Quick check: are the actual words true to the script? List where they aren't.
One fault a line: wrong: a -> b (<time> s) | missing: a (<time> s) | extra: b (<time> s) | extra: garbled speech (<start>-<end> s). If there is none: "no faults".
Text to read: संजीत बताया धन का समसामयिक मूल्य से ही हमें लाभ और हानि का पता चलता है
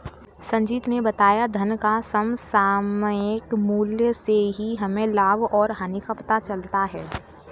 extra: ने (0.9 s)